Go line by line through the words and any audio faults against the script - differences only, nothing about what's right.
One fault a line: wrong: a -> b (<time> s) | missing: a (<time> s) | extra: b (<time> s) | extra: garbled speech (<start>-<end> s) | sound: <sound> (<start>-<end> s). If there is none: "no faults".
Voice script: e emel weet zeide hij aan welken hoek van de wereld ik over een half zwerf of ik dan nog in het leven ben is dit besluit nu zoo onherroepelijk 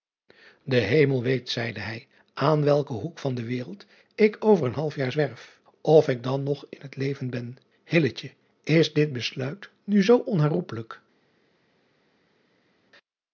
extra: jaar (4.9 s)